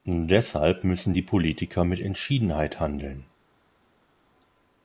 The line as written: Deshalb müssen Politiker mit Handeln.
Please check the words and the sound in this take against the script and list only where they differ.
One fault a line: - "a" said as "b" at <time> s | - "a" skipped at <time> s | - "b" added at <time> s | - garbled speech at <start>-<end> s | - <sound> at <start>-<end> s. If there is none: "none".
- "die" added at 1.1 s
- "Entschiedenheit" added at 2.0 s